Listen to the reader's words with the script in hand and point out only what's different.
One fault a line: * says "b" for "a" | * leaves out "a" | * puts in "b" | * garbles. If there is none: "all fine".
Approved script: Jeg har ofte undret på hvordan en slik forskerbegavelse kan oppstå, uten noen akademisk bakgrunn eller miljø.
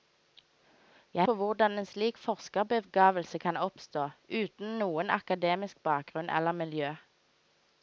* leaves out "har ofte undret"